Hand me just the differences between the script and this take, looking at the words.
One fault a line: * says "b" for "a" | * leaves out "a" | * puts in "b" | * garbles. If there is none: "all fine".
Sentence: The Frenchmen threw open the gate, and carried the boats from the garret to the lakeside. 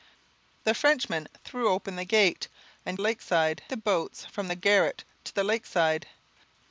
* says "lakeside" for "carried"